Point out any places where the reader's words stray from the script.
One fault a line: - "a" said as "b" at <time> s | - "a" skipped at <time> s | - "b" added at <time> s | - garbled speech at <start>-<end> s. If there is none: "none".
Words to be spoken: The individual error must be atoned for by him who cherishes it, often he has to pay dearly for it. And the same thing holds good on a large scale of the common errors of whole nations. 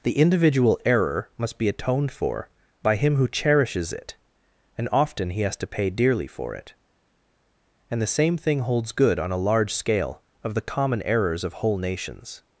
- "and" added at 4.8 s